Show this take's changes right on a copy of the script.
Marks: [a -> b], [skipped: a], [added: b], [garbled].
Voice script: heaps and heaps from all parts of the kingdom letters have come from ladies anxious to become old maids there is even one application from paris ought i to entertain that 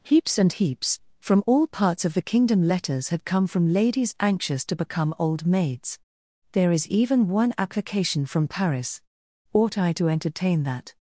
heaps and heaps from all parts of the kingdom letters [have -> had] come from ladies anxious to become old maids there is even one application from paris ought i to entertain that